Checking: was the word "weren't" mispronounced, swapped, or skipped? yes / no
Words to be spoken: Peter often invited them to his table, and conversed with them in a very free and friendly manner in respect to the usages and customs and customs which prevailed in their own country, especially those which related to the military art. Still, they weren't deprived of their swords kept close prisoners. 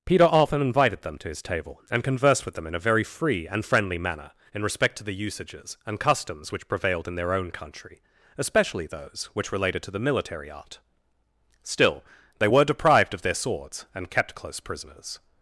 yes